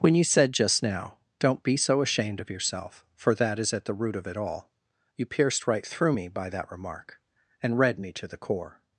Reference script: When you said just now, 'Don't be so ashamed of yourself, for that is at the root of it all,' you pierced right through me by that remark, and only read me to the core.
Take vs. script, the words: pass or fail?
fail